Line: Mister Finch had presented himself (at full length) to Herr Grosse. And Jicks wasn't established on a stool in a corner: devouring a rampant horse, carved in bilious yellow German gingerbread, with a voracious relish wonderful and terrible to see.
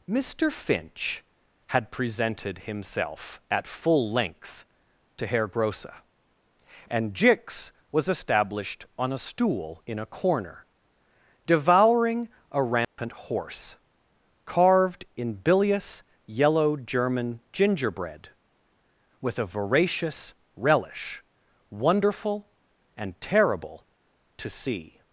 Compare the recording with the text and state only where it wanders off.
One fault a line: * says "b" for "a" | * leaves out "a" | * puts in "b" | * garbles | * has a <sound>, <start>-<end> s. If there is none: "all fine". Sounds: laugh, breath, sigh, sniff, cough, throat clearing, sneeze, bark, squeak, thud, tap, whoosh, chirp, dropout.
* says "was" for "wasn't"
* has a dropout, 12.8-13.0 s